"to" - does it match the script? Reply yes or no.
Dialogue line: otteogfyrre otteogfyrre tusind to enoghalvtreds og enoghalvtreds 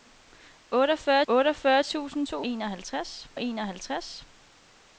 yes